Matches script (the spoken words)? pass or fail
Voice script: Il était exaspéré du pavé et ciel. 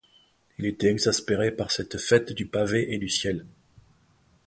fail